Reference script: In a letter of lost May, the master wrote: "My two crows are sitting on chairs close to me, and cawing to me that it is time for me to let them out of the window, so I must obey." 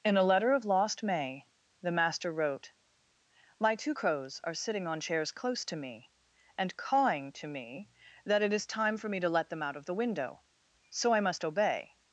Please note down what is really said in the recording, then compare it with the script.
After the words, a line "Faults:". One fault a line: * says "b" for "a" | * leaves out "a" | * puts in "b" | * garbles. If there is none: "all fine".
In a letter of lost May, the master wrote: "My two crows are sitting on chairs close to me, and cawing to me that it is time for me to let them out of the window, so I must obey."
Faults:
all fine